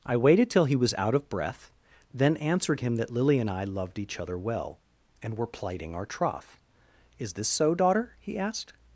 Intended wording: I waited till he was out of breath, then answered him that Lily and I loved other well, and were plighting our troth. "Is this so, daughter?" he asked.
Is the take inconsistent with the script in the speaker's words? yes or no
yes